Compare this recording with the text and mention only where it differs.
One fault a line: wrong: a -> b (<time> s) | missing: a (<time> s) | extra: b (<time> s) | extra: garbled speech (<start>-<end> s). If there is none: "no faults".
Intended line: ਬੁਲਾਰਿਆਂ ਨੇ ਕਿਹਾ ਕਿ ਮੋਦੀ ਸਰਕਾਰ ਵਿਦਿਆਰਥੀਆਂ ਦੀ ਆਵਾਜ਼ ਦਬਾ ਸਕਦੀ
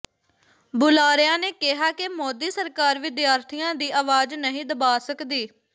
extra: ਨਹੀਂ (4.4 s)